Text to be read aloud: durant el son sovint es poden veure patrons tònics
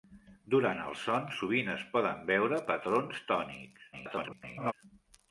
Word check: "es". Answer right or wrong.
right